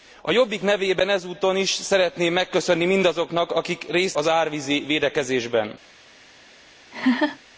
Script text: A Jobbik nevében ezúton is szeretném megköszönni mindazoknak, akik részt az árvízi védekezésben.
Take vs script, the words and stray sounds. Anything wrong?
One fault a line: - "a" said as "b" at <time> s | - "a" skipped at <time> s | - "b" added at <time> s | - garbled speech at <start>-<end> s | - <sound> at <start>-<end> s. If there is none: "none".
- laugh at 6.9-7.4 s